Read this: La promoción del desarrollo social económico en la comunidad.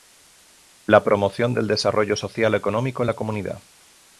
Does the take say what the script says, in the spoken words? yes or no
yes